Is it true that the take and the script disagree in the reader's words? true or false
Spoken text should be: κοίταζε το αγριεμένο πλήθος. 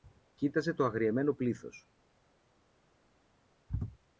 false